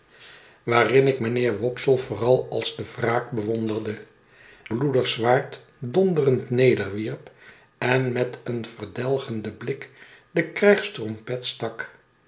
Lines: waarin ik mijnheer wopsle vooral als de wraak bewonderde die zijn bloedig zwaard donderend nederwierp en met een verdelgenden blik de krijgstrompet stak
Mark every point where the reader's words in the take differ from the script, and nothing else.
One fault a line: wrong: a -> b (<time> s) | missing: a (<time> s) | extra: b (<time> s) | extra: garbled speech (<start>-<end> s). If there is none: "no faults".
missing: die zijn (4.0 s)